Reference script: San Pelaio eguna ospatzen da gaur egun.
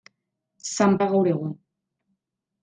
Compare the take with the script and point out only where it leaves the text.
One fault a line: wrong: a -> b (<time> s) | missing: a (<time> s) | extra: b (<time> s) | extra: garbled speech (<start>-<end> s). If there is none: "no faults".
missing: Pelaio eguna ospatzen (0.9 s)